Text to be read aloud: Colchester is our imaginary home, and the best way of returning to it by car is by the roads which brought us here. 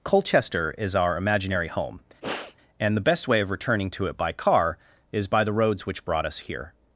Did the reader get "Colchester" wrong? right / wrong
right